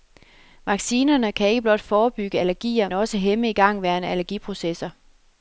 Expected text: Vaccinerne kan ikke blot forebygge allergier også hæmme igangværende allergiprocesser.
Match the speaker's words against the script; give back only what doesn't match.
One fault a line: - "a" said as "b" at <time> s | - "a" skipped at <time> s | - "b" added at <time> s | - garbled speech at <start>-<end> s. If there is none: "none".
none